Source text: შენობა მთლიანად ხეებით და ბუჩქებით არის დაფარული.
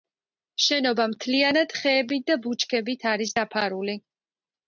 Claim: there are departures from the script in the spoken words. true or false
false